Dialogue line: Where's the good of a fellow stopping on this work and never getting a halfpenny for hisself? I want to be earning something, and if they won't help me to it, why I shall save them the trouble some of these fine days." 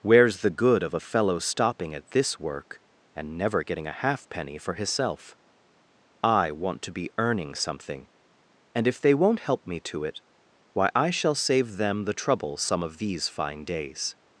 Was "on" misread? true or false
true